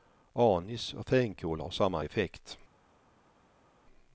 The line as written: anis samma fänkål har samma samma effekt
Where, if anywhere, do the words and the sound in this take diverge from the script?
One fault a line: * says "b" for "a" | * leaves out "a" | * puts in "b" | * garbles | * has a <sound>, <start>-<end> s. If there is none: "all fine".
* says "och" for "samma"
* leaves out "samma"